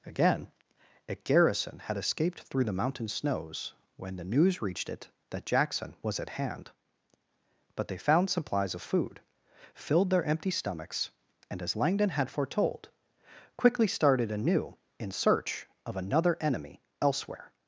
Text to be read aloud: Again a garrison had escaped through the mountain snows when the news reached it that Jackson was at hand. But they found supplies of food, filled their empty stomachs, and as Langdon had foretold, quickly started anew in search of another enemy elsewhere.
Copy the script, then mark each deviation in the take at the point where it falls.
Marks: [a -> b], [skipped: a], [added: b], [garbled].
Again a garrison had escaped through the mountain snows when the news reached it that Jackson was at hand. But they found supplies of food, filled their empty stomachs, and as Langdon had foretold, quickly started anew in search of another enemy elsewhere.